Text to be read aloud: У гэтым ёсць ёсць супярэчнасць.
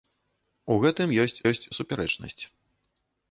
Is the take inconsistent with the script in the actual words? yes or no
no